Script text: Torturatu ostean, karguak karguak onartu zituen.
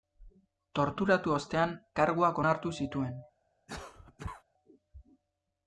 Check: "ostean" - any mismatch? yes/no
no